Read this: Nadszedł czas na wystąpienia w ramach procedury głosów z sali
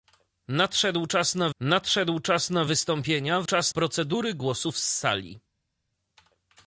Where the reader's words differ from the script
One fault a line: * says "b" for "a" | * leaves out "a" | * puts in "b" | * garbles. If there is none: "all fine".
* puts in "nadszedł czas na"
* says "czas" for "ramach"